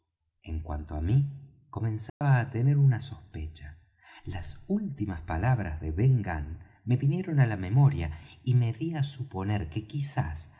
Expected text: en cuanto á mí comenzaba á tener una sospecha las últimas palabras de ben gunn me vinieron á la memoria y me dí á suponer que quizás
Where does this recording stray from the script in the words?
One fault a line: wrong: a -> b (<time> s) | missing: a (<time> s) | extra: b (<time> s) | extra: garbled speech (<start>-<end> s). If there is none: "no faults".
no faults